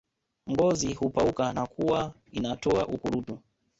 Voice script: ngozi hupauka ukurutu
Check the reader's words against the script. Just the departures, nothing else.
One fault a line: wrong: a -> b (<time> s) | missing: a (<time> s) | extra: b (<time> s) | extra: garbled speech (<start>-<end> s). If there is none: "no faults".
extra: na kuwa inatoa (1.5 s)